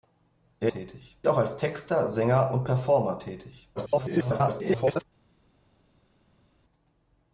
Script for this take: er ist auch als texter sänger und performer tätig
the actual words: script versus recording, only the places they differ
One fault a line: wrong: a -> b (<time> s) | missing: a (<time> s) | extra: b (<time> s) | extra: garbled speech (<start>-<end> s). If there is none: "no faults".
wrong: ist -> tätig (0.7 s)
extra: garbled speech (3.8-5.0 s)